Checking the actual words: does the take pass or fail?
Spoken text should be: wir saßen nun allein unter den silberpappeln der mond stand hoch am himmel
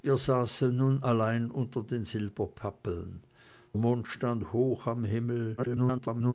fail